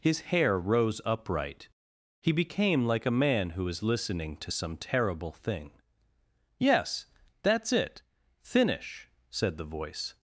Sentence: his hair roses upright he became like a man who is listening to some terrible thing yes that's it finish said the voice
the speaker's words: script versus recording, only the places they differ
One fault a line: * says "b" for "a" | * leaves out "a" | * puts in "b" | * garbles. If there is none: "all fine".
* says "rose" for "roses"